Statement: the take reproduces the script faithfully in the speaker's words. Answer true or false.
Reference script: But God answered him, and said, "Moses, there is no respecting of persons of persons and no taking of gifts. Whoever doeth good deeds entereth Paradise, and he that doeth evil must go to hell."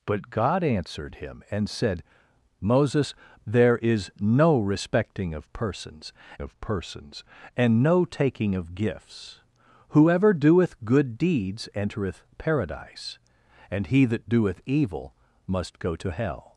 true